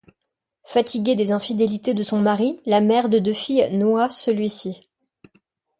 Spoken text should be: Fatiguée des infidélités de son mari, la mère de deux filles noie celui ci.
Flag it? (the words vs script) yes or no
no